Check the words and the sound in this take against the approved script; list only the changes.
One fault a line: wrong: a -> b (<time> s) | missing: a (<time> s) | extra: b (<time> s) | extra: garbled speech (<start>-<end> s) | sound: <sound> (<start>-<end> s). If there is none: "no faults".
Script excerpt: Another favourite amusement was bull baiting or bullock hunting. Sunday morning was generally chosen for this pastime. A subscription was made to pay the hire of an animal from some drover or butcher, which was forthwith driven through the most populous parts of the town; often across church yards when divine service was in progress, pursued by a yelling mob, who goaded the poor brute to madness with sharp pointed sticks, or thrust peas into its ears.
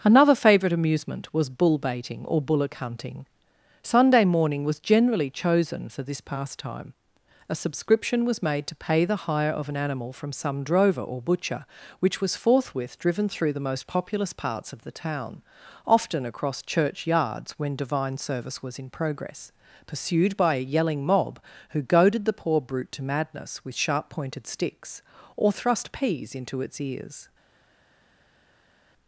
no faults